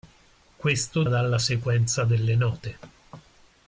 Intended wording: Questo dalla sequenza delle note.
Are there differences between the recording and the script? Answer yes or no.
no